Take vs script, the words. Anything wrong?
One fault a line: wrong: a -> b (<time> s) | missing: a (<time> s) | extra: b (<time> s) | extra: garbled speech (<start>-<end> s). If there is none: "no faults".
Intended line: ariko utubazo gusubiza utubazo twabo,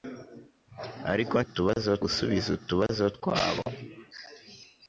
no faults